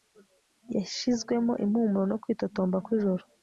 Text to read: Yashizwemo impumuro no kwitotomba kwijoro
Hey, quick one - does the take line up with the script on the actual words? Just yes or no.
yes